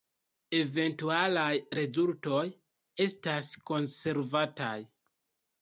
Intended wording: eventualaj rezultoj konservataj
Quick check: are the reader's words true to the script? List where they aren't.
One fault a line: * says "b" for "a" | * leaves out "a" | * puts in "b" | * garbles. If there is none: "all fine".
* puts in "estas"